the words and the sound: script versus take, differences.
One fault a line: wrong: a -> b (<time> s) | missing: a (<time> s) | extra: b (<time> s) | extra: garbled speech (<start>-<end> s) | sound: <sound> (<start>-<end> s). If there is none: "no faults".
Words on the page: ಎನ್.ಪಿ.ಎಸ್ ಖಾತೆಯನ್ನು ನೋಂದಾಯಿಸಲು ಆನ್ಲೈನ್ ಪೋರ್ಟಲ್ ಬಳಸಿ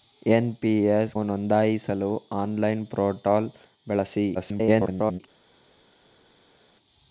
missing: ಖಾತೆಯನ್ನು (1.1 s)
extra: garbled speech (4.3-5.2 s)